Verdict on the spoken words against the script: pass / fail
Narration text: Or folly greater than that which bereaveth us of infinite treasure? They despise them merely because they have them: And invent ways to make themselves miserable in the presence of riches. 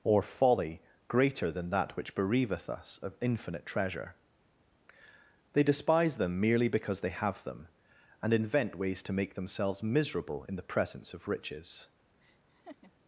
pass